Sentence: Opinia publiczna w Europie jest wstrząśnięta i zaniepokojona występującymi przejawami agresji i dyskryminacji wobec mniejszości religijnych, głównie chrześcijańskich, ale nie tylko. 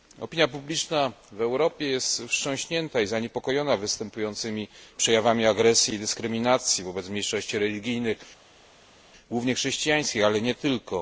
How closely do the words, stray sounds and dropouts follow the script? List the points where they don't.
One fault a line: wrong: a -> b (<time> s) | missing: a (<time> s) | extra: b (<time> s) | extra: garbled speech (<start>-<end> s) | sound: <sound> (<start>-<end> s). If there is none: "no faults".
no faults